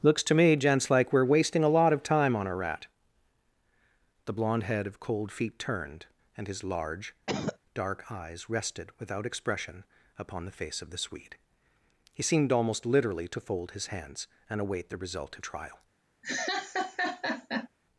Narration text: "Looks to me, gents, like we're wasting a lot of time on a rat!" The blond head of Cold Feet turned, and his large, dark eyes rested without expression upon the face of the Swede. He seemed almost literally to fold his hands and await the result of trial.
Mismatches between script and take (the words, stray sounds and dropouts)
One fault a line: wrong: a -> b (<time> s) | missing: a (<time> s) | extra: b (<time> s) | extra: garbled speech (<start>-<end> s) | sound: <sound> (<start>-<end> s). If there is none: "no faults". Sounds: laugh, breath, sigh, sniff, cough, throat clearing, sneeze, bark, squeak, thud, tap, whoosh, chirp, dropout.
sound: cough (7.3-7.6 s)
sound: laugh (16.2-17.7 s)